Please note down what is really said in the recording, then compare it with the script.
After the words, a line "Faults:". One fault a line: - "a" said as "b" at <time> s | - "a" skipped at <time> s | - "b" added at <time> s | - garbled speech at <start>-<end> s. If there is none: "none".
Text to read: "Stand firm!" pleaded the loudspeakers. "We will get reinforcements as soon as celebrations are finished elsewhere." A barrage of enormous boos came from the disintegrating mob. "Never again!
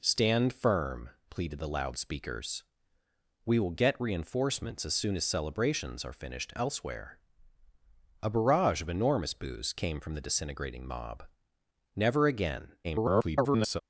"Stand firm!" pleaded the loudspeakers. "We will get reinforcements as soon as celebrations are finished elsewhere." A barrage of enormous boos came from the disintegrating mob. "Never again! [garbled]
Faults:
- garbled speech at 12.8-13.8 s